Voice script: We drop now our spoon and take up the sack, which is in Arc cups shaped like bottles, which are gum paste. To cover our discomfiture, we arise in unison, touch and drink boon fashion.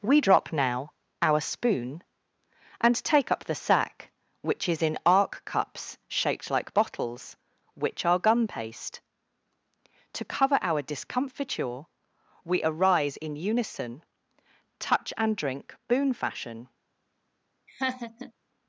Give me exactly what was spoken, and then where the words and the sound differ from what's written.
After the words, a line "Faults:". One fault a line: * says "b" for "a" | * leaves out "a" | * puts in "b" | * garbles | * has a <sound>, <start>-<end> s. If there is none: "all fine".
We drop now our spoon and take up the sack, which is in Arc cups shaped like bottles, which are gum paste. To cover our discomfiture, we arise in unison, touch and drink boon fashion.
Faults:
* has a laugh, 17.7-18.3 s